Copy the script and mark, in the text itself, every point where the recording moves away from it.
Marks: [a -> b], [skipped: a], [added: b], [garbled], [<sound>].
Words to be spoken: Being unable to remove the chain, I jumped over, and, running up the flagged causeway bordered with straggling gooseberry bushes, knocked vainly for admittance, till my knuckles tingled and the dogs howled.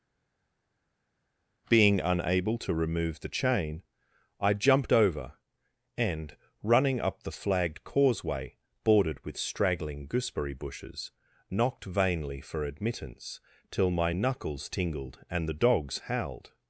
Being unable to remove the chain, I jumped over, and, running up the flagged causeway bordered with straggling gooseberry bushes, knocked vainly for admittance, till my knuckles tingled and the dogs howled.